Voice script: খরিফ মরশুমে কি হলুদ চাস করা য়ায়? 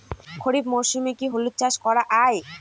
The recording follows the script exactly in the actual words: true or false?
true